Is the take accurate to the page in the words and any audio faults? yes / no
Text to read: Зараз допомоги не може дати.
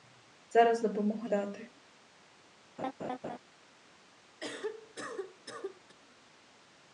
no